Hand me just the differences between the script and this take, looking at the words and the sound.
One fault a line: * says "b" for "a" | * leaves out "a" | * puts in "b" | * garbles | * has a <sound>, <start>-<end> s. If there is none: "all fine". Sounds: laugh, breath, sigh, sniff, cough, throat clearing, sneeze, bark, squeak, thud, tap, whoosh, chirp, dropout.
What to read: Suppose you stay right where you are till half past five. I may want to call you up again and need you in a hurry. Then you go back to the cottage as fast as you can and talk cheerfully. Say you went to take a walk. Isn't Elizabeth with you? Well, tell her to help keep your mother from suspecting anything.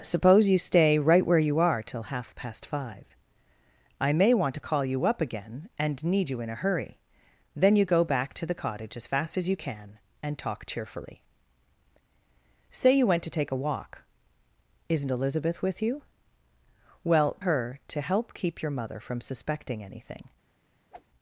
* leaves out "tell"
* has a whoosh, 20.9-21.1 s